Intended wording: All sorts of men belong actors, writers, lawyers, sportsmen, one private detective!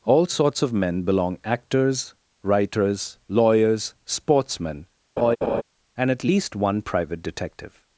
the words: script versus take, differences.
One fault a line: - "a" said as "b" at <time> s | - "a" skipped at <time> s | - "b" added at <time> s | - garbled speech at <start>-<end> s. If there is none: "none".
- "and at least" added at 6.0 s